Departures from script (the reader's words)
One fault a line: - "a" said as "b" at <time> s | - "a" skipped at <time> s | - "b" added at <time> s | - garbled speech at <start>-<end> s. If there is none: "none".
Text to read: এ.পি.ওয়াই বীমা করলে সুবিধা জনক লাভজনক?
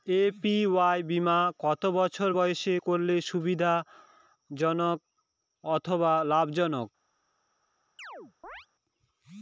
- "কত বছর বয়সে" added at 1.6 s
- "অথবা" added at 5.6 s